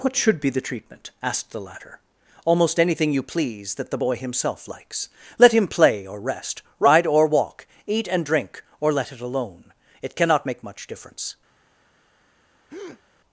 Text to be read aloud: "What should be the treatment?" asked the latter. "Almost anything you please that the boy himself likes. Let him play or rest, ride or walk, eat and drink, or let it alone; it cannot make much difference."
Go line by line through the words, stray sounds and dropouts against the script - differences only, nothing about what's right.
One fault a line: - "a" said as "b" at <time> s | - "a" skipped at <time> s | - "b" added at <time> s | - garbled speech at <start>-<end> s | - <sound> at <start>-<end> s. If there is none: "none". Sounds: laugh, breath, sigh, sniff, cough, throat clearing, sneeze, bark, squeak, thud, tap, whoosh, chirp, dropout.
- breath at 12.7-13.0 s